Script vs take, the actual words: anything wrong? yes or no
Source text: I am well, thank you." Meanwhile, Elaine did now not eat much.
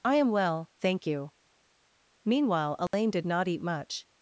yes